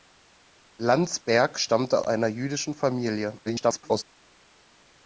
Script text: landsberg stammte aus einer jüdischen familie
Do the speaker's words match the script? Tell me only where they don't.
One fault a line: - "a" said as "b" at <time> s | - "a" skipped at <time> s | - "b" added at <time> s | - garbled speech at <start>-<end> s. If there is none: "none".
- "aus" skipped at 2.0 s
- garbled speech at 3.4-4.0 s